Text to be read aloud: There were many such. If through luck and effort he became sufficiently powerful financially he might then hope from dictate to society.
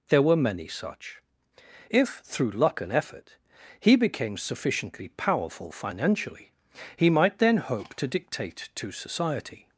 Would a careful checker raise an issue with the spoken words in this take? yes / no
yes